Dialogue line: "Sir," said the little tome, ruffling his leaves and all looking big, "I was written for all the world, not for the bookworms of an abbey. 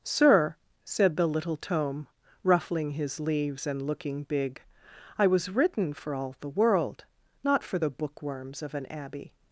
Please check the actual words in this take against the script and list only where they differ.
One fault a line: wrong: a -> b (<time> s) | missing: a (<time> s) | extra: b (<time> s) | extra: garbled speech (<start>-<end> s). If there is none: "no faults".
missing: all (3.8 s)